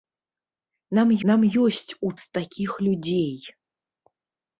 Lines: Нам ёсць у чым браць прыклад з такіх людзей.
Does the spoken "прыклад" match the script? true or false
false